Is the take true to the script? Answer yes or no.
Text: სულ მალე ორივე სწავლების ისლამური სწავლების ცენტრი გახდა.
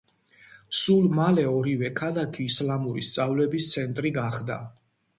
no